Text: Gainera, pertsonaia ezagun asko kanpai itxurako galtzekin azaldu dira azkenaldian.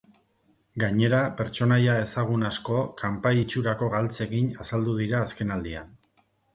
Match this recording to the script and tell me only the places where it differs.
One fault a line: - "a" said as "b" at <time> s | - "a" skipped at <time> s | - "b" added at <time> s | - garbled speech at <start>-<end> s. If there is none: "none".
none